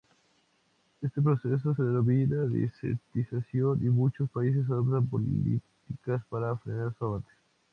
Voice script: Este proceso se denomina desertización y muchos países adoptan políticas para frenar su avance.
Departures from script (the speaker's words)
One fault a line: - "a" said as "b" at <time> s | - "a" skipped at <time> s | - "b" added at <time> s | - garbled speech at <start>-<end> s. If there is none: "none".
none